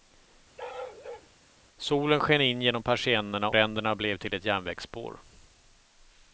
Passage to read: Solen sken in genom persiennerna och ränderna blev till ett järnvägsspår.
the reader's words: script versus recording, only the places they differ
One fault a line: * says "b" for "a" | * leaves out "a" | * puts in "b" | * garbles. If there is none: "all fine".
* leaves out "och"